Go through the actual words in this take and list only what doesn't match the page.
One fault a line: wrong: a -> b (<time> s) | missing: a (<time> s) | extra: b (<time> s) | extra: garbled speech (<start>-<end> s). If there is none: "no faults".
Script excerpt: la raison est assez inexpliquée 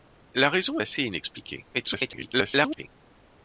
missing: est (0.8 s)
extra: garbled speech (1.7-2.9 s)